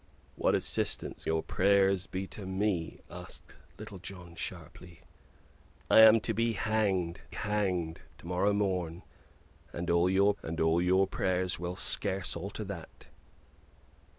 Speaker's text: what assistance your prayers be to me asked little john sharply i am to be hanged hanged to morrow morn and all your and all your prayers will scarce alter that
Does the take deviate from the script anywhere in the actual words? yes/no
no